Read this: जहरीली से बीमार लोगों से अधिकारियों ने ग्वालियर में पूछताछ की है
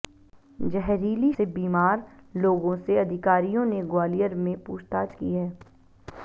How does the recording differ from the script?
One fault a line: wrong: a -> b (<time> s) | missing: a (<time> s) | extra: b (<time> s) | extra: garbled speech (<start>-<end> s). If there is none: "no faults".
no faults